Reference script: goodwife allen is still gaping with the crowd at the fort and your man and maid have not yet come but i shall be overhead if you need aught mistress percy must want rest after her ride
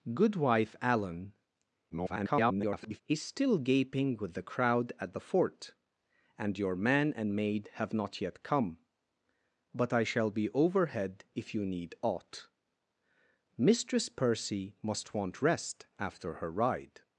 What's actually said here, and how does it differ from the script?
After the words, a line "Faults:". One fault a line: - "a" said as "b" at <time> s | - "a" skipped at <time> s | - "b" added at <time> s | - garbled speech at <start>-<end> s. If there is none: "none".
goodwife allen [garbled] is still gaping with the crowd at the fort and your man and maid have not yet come but i shall be overhead if you need aught mistress percy must want rest after her ride
Faults:
- garbled speech at 1.9-3.0 s